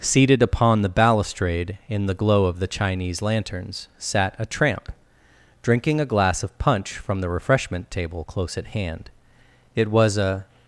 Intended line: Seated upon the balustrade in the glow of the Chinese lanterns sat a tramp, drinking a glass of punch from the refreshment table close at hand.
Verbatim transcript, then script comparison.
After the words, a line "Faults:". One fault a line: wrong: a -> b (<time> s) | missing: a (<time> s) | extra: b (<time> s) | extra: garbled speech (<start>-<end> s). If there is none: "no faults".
Seated upon the balustrade in the glow of the Chinese lanterns sat a tramp, drinking a glass of punch from the refreshment table close at hand. It was a
Faults:
extra: It was a (9.7 s)